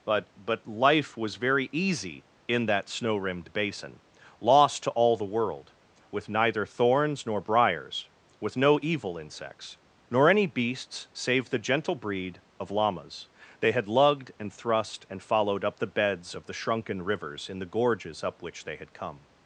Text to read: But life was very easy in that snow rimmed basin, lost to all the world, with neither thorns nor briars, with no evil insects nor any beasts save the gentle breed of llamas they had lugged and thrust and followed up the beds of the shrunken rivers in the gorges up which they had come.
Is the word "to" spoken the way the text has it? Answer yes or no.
yes